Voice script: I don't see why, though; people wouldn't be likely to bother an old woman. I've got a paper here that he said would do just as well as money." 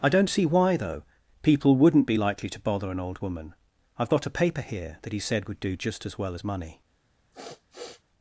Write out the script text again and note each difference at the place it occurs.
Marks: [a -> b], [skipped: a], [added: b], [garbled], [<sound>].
I don't see why, though; people wouldn't be likely to bother an old woman. I've got a paper here that he said would do just as well as money." [sniff]